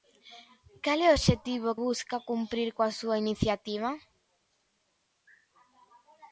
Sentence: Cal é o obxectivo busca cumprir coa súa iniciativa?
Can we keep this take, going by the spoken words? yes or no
yes